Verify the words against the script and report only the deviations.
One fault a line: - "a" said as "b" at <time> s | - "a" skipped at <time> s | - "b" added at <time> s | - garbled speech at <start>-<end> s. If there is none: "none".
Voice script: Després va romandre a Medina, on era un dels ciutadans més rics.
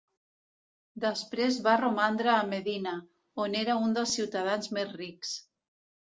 none